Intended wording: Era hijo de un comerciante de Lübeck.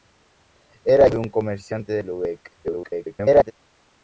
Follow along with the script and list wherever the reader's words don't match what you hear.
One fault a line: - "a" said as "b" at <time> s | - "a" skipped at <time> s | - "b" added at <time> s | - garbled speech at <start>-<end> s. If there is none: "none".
- "hijo" skipped at 1.1 s
- garbled speech at 2.6-3.5 s